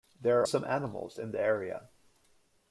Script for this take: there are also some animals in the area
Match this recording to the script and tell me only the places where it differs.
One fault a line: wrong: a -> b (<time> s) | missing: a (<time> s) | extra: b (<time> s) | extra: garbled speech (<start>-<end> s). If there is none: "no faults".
missing: also (0.5 s)